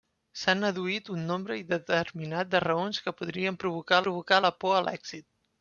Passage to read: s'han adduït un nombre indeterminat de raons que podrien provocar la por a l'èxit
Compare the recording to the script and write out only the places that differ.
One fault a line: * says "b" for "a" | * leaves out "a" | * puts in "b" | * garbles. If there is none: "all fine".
* puts in "provocar"